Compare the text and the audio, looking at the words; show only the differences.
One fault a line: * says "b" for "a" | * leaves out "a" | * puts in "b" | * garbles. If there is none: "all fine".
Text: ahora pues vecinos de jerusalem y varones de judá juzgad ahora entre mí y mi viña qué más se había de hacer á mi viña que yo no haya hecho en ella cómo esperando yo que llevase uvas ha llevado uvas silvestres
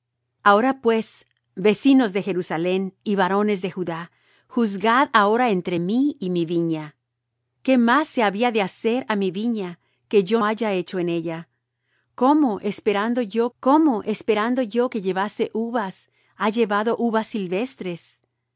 * leaves out "no"
* puts in "cómo esperando yo"